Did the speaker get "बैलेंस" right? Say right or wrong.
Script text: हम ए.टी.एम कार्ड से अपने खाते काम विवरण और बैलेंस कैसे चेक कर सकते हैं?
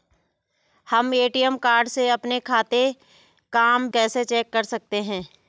wrong